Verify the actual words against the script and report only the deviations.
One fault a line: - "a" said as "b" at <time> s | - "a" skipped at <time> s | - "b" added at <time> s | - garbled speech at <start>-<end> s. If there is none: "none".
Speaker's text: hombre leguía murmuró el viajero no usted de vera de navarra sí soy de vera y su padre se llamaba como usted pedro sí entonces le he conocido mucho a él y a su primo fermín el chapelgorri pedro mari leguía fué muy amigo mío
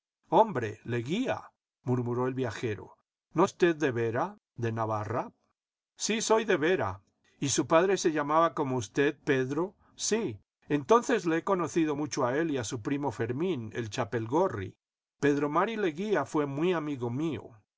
none